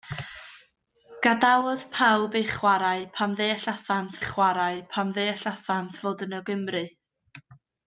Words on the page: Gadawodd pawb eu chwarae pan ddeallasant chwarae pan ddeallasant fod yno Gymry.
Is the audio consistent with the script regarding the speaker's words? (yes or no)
yes